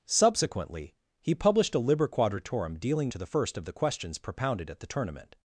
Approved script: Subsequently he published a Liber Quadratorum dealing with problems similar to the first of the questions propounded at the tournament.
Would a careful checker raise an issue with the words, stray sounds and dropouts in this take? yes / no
yes